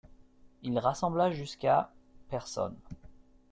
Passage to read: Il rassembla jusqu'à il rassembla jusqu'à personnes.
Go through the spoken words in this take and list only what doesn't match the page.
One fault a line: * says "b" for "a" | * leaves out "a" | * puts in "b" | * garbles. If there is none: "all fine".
* leaves out "il rassembla jusqu'à"